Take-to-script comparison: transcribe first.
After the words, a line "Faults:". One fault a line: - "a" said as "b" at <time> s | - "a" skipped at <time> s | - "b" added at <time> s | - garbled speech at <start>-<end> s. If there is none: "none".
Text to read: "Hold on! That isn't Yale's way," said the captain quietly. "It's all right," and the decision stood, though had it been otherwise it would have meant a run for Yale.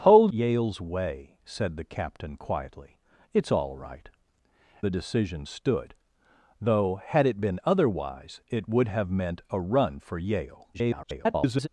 "Hold Yale's way," said the captain quietly. "It's all right," the decision stood, though had it been otherwise it would have meant a run for Yale. [garbled]
Faults:
- "on That isn't" skipped at 0.3 s
- "and" skipped at 4.1 s
- garbled speech at 10.7-11.7 s